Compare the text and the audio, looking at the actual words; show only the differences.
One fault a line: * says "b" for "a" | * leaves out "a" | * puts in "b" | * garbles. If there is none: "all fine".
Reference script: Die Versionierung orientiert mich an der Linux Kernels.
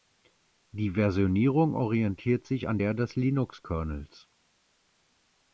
* says "sich" for "mich"
* puts in "des"